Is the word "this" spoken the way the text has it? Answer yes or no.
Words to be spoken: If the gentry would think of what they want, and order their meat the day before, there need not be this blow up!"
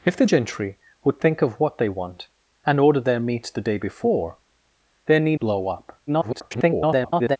no